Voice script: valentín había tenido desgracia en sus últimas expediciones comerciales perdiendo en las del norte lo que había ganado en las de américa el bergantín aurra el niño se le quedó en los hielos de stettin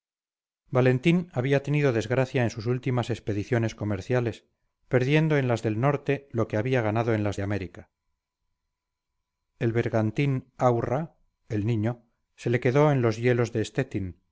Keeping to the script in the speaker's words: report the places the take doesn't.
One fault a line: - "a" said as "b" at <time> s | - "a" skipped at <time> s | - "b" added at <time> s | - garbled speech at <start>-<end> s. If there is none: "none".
none